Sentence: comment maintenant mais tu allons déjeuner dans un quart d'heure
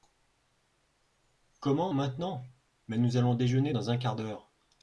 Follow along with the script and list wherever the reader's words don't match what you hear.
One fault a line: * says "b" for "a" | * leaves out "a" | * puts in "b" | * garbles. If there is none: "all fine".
* says "nous" for "tu"